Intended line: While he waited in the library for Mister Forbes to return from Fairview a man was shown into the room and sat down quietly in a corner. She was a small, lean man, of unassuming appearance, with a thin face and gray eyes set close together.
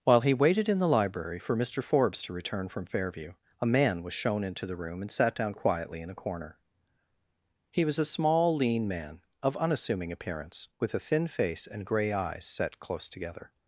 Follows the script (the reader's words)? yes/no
no